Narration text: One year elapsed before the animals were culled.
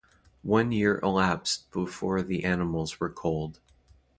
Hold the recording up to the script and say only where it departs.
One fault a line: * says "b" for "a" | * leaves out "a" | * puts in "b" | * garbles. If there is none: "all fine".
all fine